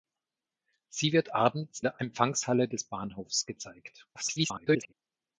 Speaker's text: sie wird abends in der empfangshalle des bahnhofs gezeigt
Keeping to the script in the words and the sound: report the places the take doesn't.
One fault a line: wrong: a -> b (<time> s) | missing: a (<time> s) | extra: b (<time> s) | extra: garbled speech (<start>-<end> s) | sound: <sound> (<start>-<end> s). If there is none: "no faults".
missing: in (1.8 s)
extra: garbled speech (4.1-4.9 s)